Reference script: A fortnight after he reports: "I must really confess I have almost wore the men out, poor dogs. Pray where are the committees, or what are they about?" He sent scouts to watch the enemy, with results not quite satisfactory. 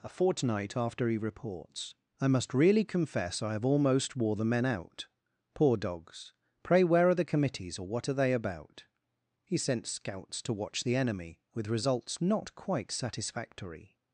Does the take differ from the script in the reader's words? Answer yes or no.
no